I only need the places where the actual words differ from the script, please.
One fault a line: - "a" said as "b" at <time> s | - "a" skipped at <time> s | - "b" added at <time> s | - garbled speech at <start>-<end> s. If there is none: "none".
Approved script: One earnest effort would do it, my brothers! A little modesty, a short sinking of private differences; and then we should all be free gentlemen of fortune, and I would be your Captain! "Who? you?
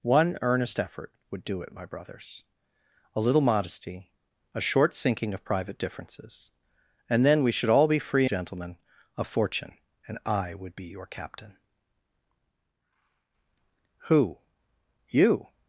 none